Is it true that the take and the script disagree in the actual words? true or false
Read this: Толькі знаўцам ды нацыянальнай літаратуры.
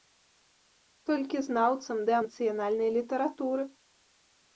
false